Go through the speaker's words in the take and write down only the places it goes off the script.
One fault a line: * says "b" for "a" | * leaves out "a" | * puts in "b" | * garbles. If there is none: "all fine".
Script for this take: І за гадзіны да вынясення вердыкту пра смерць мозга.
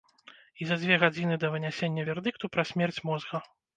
* puts in "дзве"